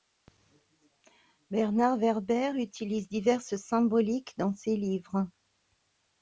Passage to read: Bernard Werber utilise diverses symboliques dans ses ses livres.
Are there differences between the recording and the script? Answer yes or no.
yes